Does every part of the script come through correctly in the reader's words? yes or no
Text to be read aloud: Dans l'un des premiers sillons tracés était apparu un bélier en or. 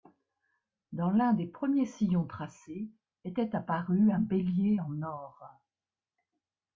yes